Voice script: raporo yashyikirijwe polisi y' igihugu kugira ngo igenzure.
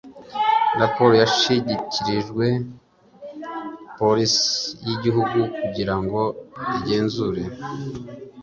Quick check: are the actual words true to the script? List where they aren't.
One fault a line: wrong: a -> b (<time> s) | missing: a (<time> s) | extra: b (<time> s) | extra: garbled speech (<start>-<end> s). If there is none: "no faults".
no faults